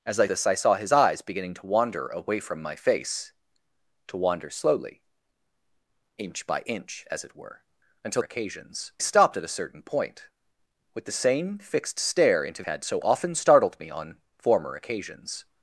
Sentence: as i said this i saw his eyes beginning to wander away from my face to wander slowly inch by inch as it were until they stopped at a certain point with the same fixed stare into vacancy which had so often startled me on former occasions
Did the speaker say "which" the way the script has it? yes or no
no